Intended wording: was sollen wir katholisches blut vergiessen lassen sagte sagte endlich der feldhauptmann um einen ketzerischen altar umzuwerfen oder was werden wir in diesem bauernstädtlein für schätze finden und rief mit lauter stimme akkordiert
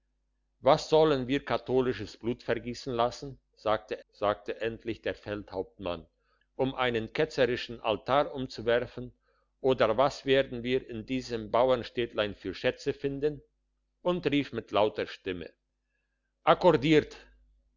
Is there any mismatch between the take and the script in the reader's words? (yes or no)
no